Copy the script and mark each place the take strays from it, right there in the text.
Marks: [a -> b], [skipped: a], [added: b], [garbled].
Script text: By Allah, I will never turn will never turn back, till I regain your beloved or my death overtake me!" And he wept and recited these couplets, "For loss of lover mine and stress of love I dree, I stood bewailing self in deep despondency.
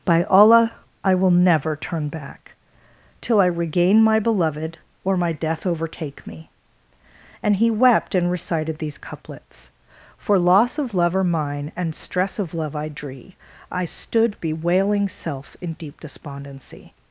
By Allah, I will never turn [skipped: will never turn] back, till I regain [your -> my] beloved or my death overtake me!" And he wept and recited these couplets, "For loss of lover mine and stress of love I dree, I stood bewailing self in deep despondency.